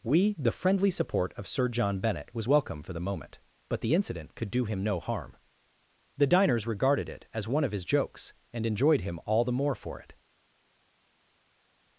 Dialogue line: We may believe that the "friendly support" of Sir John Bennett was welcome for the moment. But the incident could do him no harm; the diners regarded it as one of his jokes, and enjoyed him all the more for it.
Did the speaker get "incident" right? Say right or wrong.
right